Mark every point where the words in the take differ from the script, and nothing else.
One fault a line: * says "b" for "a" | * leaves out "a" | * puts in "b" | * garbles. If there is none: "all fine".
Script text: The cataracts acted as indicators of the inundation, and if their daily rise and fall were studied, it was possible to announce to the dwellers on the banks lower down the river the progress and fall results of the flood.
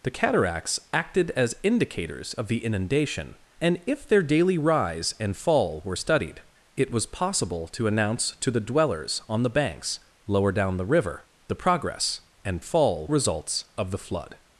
all fine